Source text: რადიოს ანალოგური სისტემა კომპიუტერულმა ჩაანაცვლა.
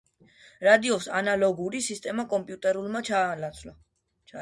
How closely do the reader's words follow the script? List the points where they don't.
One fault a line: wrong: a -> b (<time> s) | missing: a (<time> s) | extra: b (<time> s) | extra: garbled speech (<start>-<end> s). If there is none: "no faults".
no faults